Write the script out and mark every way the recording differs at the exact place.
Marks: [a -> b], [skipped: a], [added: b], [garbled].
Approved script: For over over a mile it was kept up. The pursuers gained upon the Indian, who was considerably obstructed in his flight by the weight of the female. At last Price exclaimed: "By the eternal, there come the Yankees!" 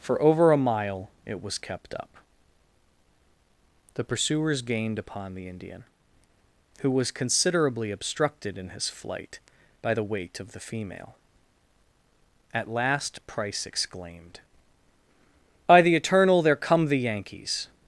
For over [skipped: over] a mile it was kept up. The pursuers gained upon the Indian, who was considerably obstructed in his flight by the weight of the female. At last Price exclaimed: "By the eternal, there come the Yankees!"